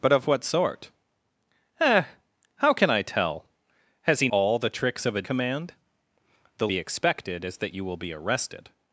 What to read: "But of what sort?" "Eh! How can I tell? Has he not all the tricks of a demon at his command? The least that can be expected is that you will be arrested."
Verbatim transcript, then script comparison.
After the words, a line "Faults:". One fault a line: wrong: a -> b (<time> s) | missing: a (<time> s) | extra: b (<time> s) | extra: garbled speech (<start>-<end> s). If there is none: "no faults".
"But of what sort?" "Eh! How can I tell? Has he all the tricks of a command? The be expected is that you will be arrested."
Faults:
missing: not (4.3 s)
missing: demon at his (5.2 s)
missing: least that can (6.7 s)